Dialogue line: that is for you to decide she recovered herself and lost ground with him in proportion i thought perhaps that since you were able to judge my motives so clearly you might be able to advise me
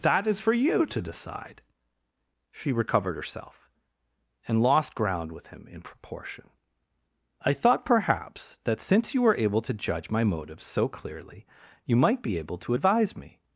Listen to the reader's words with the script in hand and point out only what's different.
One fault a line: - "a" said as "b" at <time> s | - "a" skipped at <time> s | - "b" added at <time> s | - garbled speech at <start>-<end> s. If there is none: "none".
none